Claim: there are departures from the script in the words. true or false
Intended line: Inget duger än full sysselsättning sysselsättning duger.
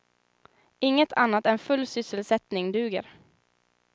true